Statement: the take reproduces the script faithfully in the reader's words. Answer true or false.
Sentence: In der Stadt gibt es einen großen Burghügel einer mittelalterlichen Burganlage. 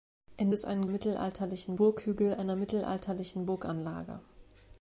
false